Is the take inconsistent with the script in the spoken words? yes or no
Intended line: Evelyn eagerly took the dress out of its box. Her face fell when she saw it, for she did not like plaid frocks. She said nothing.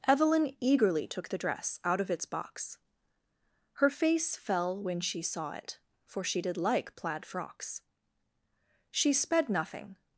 yes